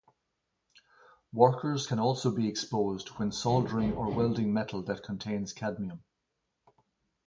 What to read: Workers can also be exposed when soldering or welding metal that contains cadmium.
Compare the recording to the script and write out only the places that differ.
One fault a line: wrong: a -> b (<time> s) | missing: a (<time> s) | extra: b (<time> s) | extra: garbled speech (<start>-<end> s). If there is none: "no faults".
no faults